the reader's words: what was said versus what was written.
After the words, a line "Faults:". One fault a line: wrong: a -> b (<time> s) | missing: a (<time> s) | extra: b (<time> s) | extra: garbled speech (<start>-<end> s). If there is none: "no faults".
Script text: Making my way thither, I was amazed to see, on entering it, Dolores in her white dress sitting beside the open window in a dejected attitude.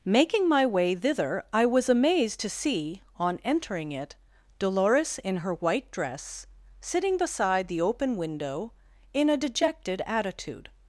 Making my way thither, I was amazed to see, on entering it, Dolores in her white dress sitting beside the open window in a dejected attitude.
Faults:
no faults